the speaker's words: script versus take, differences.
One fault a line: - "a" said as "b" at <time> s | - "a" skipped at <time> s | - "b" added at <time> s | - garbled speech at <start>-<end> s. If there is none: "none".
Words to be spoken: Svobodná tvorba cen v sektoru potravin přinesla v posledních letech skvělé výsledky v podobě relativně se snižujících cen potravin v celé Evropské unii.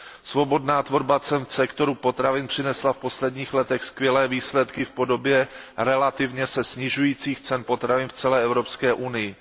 none